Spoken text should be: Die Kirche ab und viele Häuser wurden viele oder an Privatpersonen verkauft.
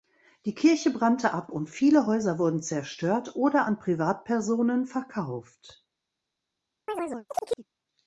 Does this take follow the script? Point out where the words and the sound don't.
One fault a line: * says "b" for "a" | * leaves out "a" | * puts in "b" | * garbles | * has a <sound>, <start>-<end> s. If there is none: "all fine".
* puts in "brannte"
* says "zerstört" for "viele"
* has a chirp, 6.9-7.7 s